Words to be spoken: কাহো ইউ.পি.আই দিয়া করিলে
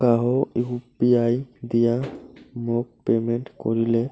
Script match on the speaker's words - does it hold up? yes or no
no